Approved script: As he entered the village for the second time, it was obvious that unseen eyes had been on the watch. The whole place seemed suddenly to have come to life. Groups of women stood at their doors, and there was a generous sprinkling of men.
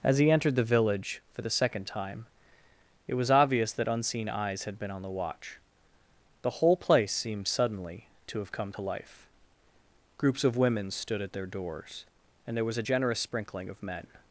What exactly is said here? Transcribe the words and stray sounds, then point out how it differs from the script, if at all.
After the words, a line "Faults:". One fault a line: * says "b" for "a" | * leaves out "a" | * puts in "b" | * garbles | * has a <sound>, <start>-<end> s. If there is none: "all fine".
As he entered the village for the second time, it was obvious that unseen eyes had been on the watch. The whole place seemed suddenly to have come to life. Groups of women stood at their doors, and there was a generous sprinkling of men.
Faults:
all fine